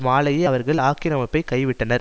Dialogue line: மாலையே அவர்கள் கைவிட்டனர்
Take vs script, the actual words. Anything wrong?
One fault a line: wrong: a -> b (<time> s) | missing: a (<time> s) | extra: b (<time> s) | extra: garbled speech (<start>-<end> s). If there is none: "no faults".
extra: ஆக்கிரமிப்பை (0.8 s)